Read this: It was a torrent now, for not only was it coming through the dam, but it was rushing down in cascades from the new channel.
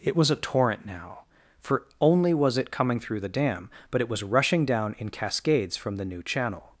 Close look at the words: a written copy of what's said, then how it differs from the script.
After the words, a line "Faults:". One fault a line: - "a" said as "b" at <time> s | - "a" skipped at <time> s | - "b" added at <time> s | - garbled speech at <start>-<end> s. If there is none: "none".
It was a torrent now, for only was it coming through the dam, but it was rushing down in cascades from the new channel.
Faults:
- "not" skipped at 1.9 s